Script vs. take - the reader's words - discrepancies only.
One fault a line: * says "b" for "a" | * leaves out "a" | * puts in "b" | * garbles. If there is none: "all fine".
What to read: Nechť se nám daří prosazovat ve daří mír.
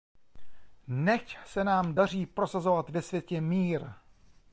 * says "světě" for "daří"